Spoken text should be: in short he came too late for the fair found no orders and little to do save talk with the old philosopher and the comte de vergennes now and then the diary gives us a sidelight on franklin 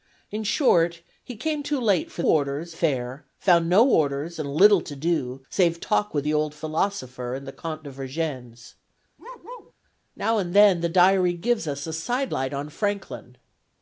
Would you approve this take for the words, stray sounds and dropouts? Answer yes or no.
no